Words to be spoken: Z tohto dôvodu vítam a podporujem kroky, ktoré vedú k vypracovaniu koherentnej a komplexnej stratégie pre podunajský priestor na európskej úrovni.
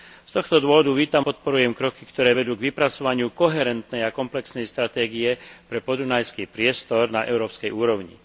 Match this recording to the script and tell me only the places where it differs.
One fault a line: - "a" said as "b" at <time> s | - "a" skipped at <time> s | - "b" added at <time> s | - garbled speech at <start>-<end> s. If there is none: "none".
- "a" skipped at 1.2 s